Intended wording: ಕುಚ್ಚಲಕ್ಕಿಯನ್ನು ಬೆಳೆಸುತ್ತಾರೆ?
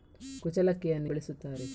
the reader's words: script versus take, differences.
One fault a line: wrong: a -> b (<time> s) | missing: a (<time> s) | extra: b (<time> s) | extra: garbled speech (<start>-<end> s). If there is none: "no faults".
no faults